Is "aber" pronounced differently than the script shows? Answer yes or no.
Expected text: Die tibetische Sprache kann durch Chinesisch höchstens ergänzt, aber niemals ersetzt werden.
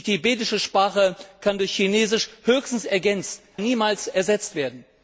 yes